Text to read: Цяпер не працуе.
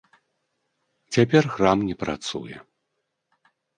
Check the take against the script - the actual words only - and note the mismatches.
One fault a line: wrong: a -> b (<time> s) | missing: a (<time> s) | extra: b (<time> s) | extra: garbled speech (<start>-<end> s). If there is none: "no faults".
extra: храм (1.5 s)